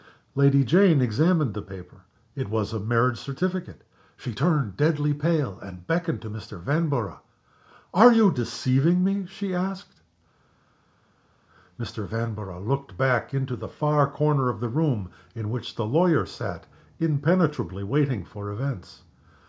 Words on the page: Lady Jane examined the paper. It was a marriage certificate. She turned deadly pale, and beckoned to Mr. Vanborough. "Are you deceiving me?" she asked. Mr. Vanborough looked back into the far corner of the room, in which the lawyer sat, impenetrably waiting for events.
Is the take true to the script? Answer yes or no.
yes